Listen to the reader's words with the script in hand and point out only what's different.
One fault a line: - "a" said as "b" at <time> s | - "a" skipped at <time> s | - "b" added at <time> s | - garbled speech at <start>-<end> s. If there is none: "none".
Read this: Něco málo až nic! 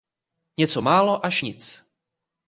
none